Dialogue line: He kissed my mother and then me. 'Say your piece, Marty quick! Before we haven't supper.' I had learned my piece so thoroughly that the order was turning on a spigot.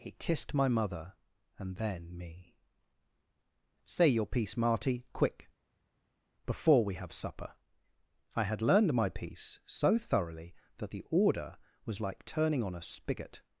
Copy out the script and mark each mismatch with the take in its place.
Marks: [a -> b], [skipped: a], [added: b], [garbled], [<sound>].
He kissed my mother and then me. 'Say your piece, Marty quick! Before we [haven't -> have] supper.' I had learned my piece so thoroughly that the order was [added: like] turning on a spigot.